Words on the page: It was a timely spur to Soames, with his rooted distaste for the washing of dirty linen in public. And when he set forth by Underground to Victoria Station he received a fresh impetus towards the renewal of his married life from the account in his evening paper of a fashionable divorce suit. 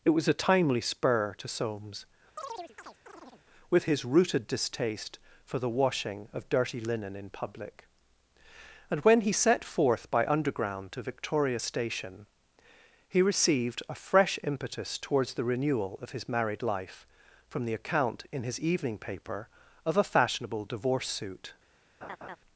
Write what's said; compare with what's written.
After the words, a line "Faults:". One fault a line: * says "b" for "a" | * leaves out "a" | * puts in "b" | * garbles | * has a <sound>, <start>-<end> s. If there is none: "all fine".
It was a timely spur to Soames, with his rooted distaste for the washing of dirty linen in public. And when he set forth by Underground to Victoria Station he received a fresh impetus towards the renewal of his married life from the account in his evening paper of a fashionable divorce suit.
Faults:
* has a chirp, 2.4-3.4 s
* has a laugh, 22.0-22.4 s